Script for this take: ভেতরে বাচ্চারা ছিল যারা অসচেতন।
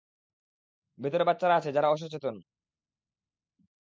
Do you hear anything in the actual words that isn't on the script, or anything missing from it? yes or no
yes